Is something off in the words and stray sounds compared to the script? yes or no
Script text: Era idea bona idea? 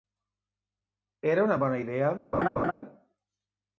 yes